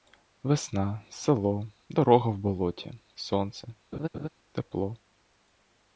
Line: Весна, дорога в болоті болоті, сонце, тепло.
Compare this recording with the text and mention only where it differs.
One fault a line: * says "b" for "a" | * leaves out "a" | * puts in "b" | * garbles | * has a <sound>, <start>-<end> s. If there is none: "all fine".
* puts in "село"
* leaves out "болоті"
* has a laugh, 3.9-4.3 s